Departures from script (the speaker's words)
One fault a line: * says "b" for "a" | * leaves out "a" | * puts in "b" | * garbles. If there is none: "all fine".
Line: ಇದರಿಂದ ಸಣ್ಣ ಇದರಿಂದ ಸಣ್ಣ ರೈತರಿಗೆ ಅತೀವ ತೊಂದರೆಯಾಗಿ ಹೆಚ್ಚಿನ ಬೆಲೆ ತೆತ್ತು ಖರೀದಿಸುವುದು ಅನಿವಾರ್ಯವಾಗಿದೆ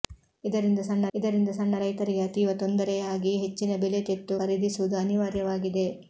all fine